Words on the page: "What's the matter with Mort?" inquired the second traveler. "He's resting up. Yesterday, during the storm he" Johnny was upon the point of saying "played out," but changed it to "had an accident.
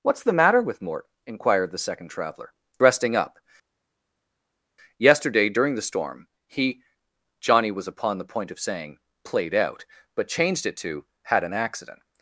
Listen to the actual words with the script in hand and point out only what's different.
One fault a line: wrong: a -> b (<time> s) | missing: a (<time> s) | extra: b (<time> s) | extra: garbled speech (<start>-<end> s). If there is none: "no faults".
missing: He's (2.5 s)